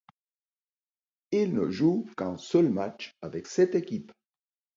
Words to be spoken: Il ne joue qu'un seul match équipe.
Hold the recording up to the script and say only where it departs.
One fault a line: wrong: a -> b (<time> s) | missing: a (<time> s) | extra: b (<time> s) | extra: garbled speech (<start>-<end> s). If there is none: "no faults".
extra: avec cette (3.2 s)